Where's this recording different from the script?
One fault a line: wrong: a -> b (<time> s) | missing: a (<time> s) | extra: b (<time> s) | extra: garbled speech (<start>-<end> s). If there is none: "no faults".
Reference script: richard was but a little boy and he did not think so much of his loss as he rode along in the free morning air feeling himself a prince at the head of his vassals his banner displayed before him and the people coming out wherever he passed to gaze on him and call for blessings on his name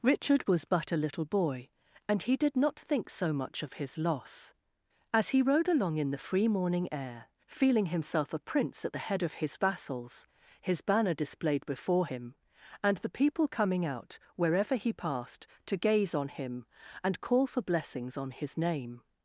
no faults